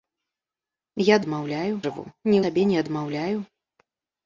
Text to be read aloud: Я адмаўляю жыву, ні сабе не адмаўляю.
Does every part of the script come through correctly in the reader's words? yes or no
yes